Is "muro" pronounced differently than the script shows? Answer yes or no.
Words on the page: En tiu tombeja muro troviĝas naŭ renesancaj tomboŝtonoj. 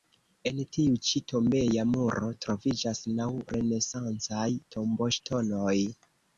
no